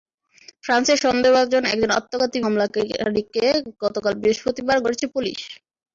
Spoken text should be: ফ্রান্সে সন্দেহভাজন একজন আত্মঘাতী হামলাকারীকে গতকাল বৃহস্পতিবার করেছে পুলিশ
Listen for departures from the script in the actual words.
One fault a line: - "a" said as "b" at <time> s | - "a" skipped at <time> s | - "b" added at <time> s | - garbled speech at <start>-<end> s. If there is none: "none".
none